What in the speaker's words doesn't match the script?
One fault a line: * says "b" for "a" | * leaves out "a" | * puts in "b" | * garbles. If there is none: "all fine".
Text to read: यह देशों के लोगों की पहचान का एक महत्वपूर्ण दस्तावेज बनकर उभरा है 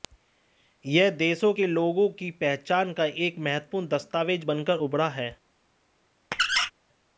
all fine